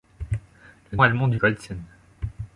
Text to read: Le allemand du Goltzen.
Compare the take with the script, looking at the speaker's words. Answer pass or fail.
pass